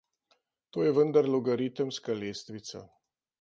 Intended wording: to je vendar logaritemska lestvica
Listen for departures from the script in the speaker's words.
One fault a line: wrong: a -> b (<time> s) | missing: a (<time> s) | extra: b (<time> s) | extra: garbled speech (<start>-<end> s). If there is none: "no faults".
no faults